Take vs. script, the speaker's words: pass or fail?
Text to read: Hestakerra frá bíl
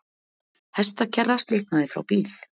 fail